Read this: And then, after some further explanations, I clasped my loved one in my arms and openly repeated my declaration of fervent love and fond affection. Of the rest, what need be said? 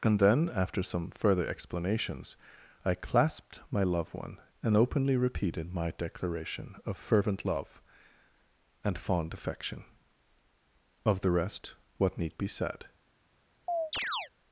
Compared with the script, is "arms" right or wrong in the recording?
wrong